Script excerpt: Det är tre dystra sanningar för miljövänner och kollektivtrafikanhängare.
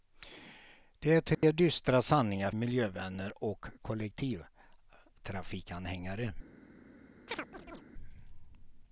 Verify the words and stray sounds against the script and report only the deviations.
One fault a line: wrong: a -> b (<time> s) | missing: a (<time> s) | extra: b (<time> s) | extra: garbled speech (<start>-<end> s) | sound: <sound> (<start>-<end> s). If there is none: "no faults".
sound: dropout (1.3-1.4 s)
missing: för (2.5 s)
sound: chirp (7.3-7.8 s)